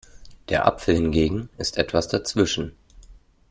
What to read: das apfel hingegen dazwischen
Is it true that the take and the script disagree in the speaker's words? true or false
true